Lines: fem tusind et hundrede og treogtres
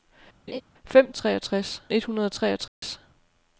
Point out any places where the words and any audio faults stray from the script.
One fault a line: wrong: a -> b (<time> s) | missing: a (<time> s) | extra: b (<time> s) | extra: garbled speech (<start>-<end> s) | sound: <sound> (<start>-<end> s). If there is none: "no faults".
sound: laugh (0.5-0.6 s)
wrong: tusind -> treogtres (1.1 s)
sound: dropout (2.7-2.8 s)